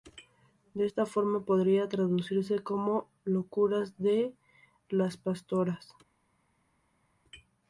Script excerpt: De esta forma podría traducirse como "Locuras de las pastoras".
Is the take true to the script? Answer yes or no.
yes